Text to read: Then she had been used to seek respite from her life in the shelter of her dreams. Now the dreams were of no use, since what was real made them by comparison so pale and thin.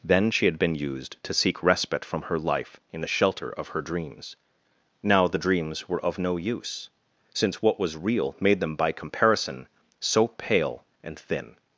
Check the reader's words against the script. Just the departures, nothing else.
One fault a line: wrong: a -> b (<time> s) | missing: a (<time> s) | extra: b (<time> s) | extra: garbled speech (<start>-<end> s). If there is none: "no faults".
no faults